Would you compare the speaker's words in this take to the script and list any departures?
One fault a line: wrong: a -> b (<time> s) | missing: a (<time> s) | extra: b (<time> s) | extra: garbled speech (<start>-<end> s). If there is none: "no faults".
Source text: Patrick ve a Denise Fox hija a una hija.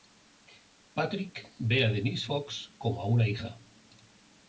wrong: hija -> como (2.8 s)